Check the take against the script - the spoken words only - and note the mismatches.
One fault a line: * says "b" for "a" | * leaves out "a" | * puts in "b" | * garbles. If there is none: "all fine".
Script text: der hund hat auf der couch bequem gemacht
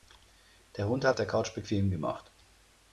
all fine